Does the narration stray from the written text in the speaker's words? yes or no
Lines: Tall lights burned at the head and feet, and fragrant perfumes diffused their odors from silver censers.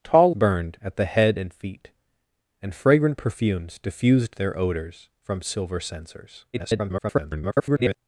yes